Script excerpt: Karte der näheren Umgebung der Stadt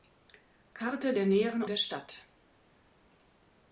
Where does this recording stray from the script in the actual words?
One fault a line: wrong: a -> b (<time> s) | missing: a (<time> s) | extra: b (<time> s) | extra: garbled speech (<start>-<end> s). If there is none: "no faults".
missing: Umgebung (1.6 s)